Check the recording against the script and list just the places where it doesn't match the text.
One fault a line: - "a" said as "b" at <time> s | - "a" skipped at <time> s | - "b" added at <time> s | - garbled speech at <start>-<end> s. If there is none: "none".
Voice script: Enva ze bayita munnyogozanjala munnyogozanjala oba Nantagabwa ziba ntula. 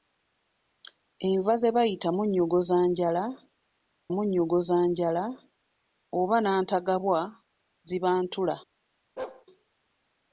none